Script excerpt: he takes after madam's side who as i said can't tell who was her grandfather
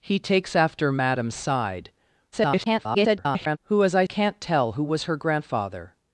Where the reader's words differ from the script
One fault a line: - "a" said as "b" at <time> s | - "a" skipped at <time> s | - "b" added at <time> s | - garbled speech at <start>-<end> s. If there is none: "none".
- garbled speech at 2.3-3.6 s
- "said" skipped at 4.0 s